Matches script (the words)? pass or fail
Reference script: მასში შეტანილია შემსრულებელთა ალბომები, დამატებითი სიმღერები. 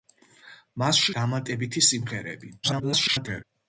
fail